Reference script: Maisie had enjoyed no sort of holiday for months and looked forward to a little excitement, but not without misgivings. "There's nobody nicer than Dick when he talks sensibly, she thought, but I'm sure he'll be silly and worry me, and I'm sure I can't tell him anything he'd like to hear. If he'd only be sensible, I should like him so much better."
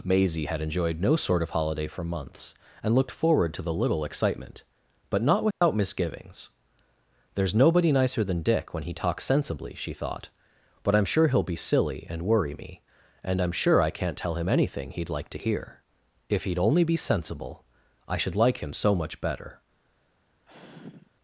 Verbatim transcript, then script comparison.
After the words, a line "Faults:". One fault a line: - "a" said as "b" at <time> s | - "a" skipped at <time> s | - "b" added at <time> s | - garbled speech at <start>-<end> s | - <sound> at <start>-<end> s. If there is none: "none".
Maisie had enjoyed no sort of holiday for months and looked forward to the little excitement, but not without misgivings. "There's nobody nicer than Dick when he talks sensibly, she thought, but I'm sure he'll be silly and worry me, and I'm sure I can't tell him anything he'd like to hear. If he'd only be sensible, I should like him so much better."
Faults:
- "a" said as "the" at 3.6 s
- dropout at 5.5-5.6 s
- sigh at 20.5-21.1 s